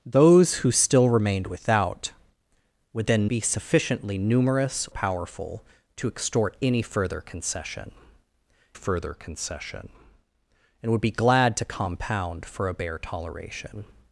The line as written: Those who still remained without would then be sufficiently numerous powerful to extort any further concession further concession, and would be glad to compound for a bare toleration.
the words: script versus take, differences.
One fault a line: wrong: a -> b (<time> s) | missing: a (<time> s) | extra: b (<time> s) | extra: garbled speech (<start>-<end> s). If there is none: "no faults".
no faults